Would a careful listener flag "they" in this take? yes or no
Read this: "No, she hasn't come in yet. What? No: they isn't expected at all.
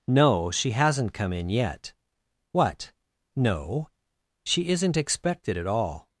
yes